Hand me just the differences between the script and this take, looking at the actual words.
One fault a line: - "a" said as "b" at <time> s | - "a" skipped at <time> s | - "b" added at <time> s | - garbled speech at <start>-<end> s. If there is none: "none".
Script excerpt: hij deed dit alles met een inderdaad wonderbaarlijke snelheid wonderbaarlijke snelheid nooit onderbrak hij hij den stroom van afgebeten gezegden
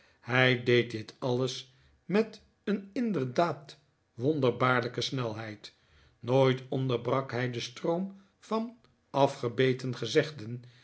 - "wonderbaarlijke snelheid" skipped at 5.7 s
- "hij" skipped at 7.5 s